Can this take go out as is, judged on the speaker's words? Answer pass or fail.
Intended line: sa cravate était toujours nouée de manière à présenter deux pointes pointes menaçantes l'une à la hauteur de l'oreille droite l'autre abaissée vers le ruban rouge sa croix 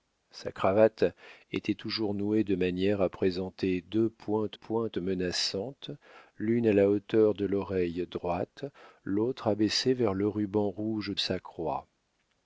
pass